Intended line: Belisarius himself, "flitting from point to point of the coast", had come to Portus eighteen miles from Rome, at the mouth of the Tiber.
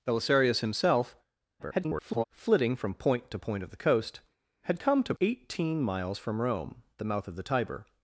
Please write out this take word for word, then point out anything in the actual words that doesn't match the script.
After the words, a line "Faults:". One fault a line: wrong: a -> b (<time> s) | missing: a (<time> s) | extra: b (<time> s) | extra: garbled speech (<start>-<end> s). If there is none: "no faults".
Belisarius himself, [garbled] "flitting from point to point of the coast", had come to Eighteen miles from Rome, the mouth of the Tiber.
Faults:
extra: garbled speech (1.6-2.2 s)
missing: Portus (5.1 s)
missing: at (6.8 s)